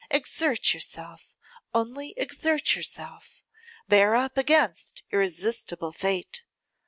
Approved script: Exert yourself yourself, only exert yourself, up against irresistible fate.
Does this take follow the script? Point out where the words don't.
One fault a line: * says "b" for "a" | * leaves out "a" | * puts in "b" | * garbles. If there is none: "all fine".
* leaves out "yourself"
* puts in "bear"